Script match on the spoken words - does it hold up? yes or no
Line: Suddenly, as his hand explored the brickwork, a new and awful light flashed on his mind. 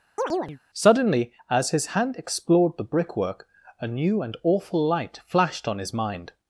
yes